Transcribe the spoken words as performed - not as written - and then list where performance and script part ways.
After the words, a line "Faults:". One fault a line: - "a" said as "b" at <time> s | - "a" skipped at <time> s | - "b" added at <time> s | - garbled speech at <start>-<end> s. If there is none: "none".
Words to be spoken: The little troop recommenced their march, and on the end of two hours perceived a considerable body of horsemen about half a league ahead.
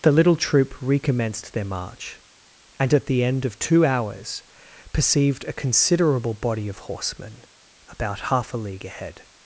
The little troop recommenced their march, and at the end of two hours perceived a considerable body of horsemen about half a league ahead.
Faults:
- "on" said as "at" at 2.9 s